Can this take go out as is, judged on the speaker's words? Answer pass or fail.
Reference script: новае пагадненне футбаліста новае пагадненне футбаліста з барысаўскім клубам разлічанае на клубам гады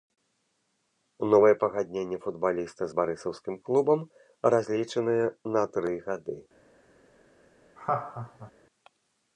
fail